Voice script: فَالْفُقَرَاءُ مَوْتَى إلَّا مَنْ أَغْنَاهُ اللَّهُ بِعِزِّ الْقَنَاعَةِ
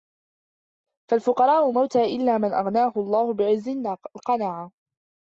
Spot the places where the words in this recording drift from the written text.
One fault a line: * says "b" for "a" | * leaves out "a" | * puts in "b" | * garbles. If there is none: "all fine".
all fine